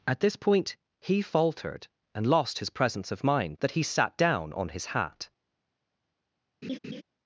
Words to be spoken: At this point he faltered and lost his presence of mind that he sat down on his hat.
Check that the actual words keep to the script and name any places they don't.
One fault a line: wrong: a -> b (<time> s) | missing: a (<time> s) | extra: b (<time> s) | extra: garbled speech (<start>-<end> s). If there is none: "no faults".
no faults